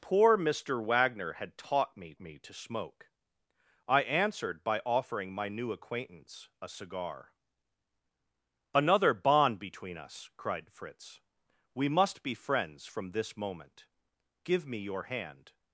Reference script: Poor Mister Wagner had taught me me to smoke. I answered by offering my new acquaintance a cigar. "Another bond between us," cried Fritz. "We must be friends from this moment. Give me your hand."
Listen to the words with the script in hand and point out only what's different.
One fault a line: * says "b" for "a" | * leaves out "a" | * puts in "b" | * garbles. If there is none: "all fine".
all fine